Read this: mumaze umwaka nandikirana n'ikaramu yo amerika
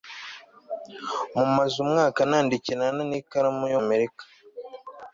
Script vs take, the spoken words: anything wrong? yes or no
no